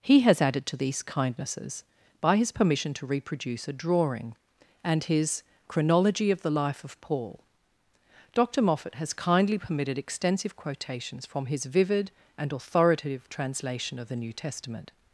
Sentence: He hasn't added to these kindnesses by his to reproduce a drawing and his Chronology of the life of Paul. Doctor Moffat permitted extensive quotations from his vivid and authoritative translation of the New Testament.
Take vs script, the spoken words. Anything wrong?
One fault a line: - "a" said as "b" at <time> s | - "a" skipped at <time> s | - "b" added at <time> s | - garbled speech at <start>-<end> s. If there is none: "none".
- "hasn't" said as "has" at 0.2 s
- "permission" added at 2.5 s
- "has kindly" added at 9.0 s